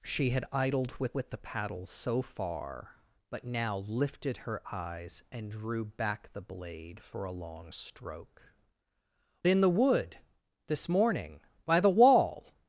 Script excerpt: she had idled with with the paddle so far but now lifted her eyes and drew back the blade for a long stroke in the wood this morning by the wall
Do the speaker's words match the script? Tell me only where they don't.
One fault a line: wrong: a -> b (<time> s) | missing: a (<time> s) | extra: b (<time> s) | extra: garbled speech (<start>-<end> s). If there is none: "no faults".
no faults